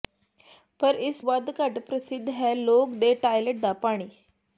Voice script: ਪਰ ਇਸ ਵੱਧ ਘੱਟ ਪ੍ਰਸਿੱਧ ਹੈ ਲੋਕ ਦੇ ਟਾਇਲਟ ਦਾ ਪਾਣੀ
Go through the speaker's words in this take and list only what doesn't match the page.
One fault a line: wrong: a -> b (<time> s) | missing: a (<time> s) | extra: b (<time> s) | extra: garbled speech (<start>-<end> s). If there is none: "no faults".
no faults